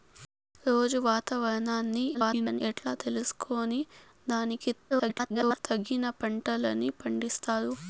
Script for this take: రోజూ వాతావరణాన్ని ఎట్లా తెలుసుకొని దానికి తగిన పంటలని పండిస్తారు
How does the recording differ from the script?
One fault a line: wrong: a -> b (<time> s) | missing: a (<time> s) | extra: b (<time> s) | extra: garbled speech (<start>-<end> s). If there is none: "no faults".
extra: garbled speech (2.1-2.6 s)
extra: garbled speech (4.9-5.6 s)